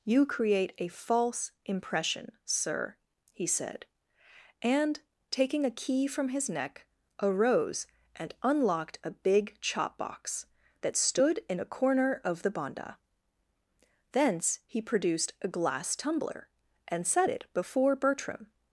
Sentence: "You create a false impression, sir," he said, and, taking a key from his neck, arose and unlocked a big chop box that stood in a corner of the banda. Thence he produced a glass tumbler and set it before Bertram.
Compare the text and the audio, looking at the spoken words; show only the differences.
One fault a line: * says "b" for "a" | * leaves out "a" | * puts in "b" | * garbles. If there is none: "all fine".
all fine